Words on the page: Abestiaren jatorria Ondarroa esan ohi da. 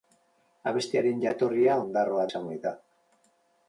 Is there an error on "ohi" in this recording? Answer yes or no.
no